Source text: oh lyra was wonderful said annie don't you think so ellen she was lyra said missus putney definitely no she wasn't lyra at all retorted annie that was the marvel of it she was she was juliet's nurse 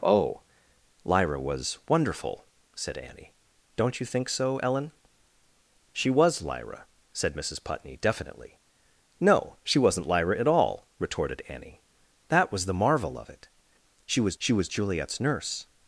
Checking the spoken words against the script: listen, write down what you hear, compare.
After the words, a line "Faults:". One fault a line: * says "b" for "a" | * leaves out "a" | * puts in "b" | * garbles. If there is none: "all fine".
oh lyra was wonderful said annie don't you think so ellen she was lyra said missus putney definitely no she wasn't lyra at all retorted annie that was the marvel of it she was she was juliet's nurse
Faults:
all fine